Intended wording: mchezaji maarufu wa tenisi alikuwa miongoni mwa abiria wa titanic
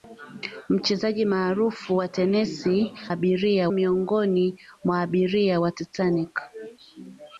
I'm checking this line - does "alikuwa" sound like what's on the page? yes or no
no